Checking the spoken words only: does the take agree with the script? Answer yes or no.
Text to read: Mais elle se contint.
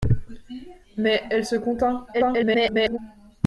no